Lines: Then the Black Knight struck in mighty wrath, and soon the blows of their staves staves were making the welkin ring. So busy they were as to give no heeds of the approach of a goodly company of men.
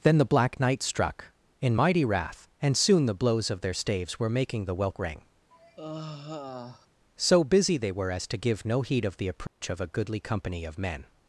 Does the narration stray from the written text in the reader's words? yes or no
yes